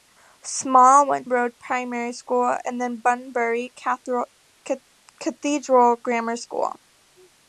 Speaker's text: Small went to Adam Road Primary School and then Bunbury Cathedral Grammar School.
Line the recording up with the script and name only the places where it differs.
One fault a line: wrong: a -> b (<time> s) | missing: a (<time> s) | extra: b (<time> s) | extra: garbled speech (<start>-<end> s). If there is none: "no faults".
missing: to Adam (1.3 s)